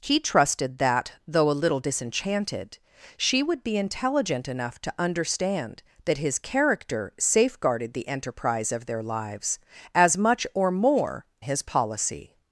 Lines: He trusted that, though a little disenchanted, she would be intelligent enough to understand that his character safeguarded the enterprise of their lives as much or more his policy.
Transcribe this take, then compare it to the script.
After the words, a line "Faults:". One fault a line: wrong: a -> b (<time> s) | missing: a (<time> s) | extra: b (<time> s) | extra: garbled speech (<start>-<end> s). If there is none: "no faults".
He trusted that, though a little disenchanted, she would be intelligent enough to understand that his character safeguarded the enterprise of their lives as much or more his policy.
Faults:
no faults